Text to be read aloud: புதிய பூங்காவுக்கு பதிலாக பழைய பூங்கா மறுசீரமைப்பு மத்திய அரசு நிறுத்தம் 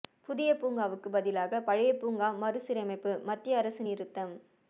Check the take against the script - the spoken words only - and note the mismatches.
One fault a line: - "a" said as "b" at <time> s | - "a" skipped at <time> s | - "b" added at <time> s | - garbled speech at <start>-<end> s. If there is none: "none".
none